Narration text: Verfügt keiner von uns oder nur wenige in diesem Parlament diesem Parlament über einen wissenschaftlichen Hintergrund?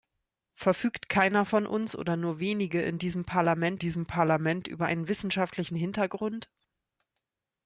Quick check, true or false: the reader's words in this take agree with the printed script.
true